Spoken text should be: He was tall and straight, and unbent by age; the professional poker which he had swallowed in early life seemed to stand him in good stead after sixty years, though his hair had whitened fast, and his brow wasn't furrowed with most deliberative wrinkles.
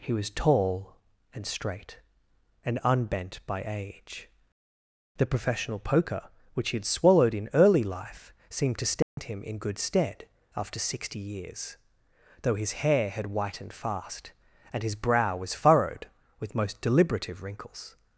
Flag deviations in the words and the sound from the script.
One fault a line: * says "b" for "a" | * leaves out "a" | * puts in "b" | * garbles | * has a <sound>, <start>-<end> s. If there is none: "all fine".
* has a dropout, 9.0-9.2 s
* says "was" for "wasn't"